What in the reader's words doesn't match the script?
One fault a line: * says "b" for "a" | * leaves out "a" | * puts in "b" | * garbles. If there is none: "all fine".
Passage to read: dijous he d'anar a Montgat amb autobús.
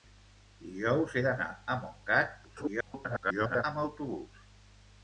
* garbles